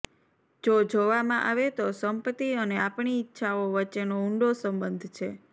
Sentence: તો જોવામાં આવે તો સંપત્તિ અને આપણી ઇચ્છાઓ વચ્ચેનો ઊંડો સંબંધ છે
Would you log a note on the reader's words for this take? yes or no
yes